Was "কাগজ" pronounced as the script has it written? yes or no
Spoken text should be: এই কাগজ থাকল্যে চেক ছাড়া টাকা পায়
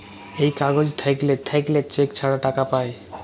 yes